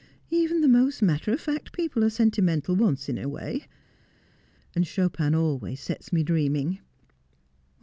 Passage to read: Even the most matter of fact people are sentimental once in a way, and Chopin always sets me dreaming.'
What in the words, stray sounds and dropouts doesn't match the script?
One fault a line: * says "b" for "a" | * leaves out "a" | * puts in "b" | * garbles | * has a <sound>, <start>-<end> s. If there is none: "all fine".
all fine